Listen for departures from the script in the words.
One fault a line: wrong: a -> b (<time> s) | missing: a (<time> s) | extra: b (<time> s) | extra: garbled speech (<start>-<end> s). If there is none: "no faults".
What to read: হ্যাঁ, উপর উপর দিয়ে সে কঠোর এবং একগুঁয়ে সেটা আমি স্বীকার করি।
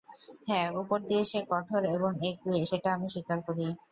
missing: উপর (1.0 s)